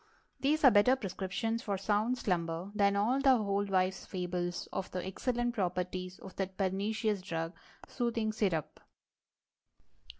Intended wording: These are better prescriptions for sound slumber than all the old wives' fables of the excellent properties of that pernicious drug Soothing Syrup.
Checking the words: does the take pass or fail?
pass